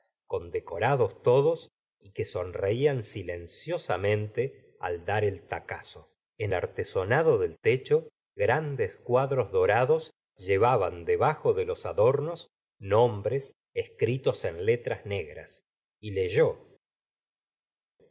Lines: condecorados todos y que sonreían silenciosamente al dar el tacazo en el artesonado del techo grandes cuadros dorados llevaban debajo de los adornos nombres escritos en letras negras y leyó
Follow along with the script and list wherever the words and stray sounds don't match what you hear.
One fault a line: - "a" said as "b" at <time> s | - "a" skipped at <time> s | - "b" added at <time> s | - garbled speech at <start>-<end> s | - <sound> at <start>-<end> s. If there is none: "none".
- "el" skipped at 6.5 s